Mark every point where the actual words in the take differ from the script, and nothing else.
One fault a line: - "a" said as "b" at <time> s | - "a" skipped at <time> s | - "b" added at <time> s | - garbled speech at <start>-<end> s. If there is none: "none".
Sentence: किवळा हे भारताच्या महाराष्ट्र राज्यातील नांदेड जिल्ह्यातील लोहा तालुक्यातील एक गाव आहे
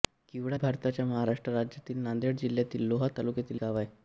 - "हे" skipped at 0.6 s
- "एक" skipped at 3.6 s